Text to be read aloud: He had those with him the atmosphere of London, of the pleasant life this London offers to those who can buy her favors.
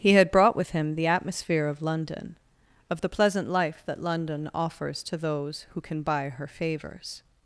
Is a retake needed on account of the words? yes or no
yes